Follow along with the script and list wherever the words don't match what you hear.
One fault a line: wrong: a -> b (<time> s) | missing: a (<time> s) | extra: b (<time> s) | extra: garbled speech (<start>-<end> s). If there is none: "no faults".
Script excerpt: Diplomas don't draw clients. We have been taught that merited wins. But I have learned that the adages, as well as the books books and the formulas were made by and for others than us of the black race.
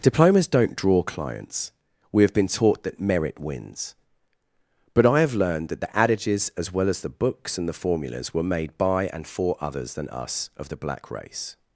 wrong: merited -> merit (3.0 s)
missing: books (7.6 s)